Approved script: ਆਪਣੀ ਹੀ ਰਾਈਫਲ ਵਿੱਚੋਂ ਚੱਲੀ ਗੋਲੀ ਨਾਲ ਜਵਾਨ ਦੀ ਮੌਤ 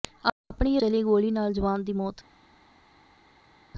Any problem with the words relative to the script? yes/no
yes